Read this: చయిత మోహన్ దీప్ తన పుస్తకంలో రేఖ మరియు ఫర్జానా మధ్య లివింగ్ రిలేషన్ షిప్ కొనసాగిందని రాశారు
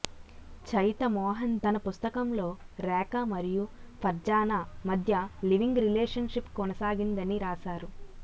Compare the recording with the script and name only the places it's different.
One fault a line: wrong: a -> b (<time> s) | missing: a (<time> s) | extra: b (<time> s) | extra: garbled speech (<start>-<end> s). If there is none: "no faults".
missing: దీప్ (1.5 s)